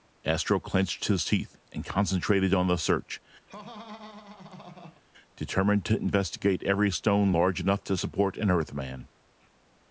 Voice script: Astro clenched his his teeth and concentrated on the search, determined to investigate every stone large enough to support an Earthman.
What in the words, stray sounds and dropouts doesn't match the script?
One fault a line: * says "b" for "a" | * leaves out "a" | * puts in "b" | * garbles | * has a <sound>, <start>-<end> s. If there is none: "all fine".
* leaves out "his"
* has a laugh, 3.5-5.0 s